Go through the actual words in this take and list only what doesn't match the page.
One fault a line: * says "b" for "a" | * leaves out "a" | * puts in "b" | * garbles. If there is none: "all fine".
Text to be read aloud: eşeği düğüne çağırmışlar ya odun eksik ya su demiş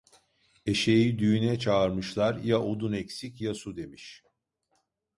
all fine